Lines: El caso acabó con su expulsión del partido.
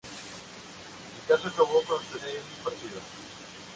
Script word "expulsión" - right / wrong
wrong